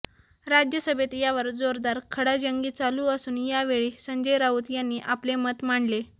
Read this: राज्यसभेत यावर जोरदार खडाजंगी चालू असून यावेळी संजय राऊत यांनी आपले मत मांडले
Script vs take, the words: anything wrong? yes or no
no